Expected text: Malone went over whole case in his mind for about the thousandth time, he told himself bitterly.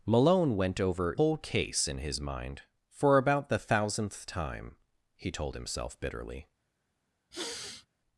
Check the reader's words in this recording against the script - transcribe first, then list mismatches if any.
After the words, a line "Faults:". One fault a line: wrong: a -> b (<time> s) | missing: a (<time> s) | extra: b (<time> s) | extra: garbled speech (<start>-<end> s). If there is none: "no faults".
Malone went over whole case in his mind for about the thousandth time, he told himself bitterly.
Faults:
no faults